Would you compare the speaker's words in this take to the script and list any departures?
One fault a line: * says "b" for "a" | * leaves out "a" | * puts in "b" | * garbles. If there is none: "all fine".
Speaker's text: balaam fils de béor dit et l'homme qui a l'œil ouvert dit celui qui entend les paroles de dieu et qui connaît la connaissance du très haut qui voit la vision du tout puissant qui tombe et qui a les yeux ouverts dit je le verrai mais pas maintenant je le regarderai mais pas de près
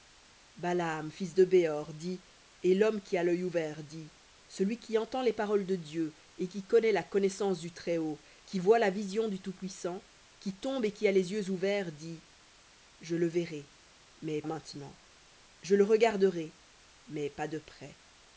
* leaves out "pas"